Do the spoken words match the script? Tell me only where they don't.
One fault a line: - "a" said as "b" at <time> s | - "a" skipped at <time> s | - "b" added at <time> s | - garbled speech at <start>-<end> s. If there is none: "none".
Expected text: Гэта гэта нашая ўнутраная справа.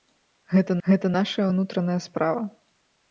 none